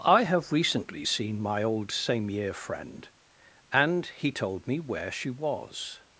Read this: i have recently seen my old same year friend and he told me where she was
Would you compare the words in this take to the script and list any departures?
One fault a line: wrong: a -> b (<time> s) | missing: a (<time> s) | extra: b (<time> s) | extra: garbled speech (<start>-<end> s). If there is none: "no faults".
no faults